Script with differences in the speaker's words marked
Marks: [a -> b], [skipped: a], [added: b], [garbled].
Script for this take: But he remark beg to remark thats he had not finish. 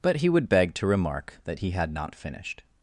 But he [remark -> would] beg to remark [thats -> that] he had not [finish. -> finished]